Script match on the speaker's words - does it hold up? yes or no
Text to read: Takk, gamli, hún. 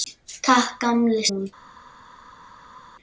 yes